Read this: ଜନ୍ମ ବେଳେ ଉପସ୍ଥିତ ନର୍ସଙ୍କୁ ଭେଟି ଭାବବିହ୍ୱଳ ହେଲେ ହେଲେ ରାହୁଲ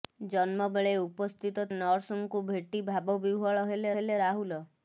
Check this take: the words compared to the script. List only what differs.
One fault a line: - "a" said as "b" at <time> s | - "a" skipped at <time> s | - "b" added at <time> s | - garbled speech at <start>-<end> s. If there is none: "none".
none